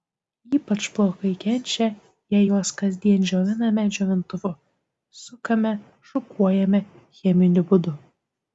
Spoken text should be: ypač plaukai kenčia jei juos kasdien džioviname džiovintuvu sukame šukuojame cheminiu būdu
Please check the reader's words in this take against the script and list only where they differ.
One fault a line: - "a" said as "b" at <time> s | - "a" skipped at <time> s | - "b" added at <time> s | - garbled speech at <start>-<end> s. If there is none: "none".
none